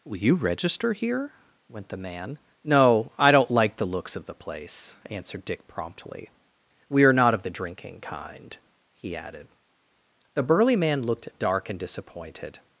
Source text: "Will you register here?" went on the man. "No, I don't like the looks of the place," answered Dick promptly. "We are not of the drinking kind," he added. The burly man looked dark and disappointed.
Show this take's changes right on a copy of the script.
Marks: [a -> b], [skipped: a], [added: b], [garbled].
"Will you register here?" went [skipped: on] the man. "No, I don't like the looks of the place," answered Dick promptly. "We are not of the drinking kind," he added. The burly man looked dark and disappointed.